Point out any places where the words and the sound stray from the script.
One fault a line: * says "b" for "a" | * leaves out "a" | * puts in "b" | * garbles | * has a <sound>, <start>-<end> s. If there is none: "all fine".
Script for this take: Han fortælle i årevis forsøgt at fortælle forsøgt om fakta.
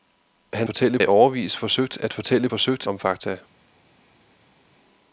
all fine